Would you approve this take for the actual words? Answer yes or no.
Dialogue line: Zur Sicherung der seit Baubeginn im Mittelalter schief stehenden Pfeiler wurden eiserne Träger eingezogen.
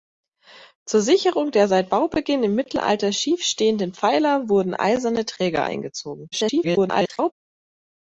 no